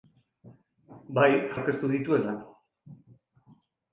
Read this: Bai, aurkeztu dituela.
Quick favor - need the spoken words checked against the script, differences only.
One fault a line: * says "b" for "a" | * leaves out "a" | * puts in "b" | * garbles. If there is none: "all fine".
all fine